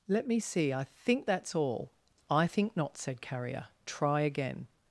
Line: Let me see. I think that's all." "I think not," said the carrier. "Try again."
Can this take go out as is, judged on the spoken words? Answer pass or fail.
fail